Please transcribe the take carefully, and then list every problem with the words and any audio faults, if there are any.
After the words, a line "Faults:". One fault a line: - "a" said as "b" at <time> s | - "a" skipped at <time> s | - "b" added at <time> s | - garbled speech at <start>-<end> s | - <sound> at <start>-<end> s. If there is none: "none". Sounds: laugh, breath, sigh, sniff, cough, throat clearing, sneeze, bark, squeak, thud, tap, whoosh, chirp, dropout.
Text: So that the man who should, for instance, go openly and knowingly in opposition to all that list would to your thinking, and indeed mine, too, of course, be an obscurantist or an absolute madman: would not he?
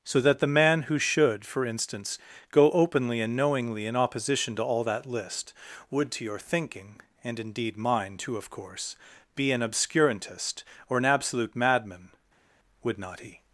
So that the man who should, for instance, go openly and knowingly in opposition to all that list would to your thinking, and indeed mine, too, of course, be an obscurantist or an absolute madman: would not he?
Faults:
none